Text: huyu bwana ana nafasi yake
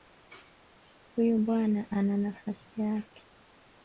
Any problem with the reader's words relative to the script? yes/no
no